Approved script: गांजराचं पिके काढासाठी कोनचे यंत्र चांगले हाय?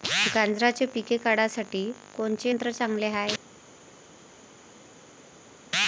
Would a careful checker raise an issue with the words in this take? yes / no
no